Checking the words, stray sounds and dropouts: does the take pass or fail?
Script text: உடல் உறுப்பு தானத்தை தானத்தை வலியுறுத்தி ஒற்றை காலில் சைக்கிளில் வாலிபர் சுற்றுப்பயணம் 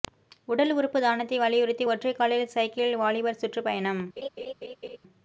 fail